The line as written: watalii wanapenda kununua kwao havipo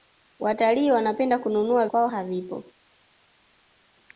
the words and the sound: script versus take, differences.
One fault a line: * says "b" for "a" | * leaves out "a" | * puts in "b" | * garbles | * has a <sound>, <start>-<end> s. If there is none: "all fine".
all fine